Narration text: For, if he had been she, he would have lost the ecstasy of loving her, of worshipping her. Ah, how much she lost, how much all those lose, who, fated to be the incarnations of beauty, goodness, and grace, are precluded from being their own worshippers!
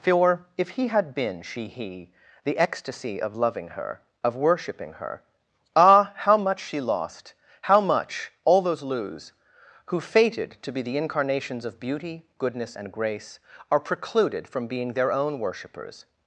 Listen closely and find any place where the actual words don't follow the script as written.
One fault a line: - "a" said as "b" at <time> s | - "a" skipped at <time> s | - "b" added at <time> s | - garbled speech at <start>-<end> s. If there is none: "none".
- "would have lost" skipped at 2.1 s